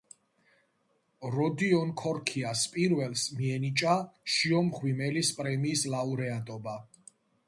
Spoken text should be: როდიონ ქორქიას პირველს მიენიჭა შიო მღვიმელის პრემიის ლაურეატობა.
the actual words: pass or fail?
pass